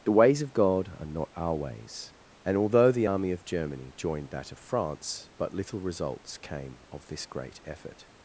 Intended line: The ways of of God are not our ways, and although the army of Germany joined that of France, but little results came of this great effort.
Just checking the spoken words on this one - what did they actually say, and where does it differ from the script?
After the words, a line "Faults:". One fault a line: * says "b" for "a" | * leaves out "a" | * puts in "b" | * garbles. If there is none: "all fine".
The ways of God are not our ways, and although the army of Germany joined that of France, but little results came of this great effort.
Faults:
* leaves out "of"